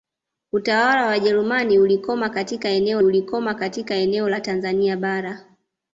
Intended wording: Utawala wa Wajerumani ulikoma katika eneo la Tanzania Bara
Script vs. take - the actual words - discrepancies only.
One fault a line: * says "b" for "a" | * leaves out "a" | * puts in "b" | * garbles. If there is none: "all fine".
* puts in "ulikoma katika eneo"